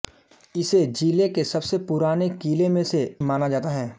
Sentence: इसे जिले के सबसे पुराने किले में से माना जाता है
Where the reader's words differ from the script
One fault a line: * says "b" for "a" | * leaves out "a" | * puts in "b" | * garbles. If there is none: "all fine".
all fine